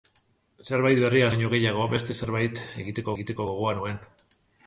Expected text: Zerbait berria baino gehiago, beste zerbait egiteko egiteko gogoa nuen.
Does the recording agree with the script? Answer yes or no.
yes